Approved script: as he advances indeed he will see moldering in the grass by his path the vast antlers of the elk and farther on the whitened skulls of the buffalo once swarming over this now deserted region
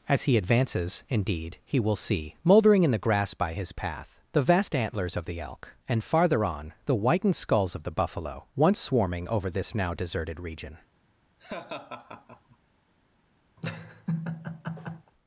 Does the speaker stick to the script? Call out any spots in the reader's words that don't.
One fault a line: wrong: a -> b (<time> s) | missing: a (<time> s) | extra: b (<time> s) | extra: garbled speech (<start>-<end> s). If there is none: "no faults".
no faults